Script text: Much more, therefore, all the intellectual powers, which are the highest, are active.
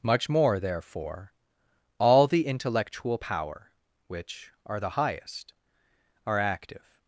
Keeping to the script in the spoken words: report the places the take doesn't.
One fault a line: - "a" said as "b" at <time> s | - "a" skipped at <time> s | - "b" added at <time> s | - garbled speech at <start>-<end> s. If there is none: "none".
- "powers" said as "power" at 3.1 s